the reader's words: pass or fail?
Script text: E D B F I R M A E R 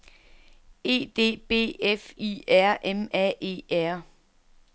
pass